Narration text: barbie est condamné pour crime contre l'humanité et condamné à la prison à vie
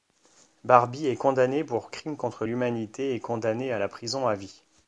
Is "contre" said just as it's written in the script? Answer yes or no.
yes